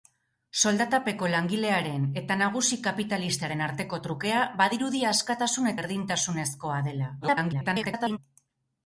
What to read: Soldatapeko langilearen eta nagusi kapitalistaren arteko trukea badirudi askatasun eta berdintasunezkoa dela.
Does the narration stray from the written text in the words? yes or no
yes